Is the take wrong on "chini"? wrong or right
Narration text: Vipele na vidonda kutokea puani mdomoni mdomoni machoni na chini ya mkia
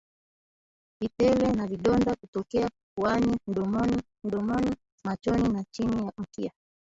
right